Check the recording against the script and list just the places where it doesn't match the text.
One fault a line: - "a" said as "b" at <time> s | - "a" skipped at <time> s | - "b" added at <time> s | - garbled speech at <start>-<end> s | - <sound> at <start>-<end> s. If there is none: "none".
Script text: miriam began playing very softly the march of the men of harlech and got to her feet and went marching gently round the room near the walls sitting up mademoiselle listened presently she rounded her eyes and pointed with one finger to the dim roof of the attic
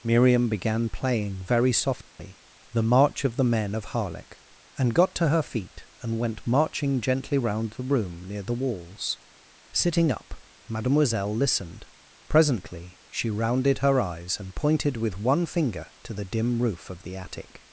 - dropout at 2.1-2.2 s